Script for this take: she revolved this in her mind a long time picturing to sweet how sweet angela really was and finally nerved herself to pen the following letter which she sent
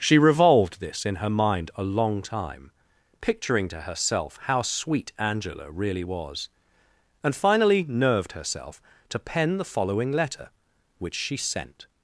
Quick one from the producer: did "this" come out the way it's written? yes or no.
yes